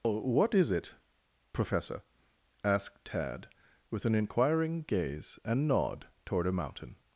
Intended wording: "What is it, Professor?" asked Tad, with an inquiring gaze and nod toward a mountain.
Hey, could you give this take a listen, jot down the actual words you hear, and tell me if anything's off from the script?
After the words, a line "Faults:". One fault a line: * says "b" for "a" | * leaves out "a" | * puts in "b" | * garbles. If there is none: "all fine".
"What is it, Professor?" asked Tad, with an inquiring gaze and nod toward a mountain.
Faults:
all fine